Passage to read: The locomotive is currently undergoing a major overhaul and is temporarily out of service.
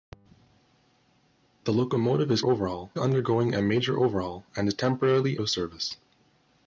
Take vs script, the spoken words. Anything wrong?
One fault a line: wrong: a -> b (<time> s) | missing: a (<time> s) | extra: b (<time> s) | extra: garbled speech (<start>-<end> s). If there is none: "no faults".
wrong: currently -> overhaul (2.4 s)
missing: out (5.4 s)